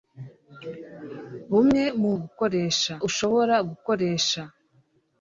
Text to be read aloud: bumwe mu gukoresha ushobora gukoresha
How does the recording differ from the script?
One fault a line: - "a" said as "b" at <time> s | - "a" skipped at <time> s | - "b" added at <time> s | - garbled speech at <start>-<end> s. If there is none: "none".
none